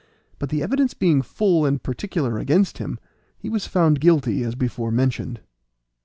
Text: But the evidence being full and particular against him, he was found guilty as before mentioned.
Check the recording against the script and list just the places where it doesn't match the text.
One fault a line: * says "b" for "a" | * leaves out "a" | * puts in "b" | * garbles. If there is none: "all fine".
all fine